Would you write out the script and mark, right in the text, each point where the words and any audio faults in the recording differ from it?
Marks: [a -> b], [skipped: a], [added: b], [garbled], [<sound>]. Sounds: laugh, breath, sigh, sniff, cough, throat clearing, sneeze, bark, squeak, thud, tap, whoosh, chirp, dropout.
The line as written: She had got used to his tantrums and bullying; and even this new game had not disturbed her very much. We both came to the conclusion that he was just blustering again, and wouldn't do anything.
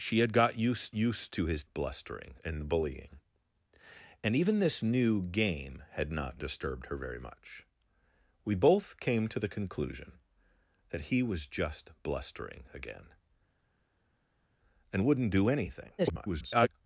She had got used [added: used] to his [tantrums -> blustering] and bullying; and even this new game had not disturbed her very much. We both came to the conclusion that he was just blustering again, and wouldn't do anything. [garbled]